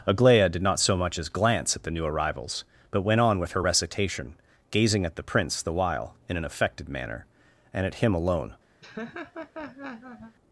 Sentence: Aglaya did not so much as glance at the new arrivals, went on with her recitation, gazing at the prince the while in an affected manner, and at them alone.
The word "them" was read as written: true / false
false